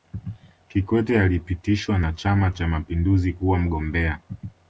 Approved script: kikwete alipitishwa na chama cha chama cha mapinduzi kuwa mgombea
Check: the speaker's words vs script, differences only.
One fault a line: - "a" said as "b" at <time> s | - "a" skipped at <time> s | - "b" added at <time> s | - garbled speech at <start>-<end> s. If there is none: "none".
- "chama cha" skipped at 2.7 s